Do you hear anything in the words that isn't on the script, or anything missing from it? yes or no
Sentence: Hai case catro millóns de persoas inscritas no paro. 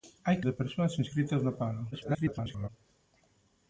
yes